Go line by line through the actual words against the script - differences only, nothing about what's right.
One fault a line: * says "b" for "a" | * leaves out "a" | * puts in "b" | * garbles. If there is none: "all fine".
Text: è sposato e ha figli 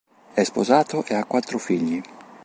* puts in "quattro"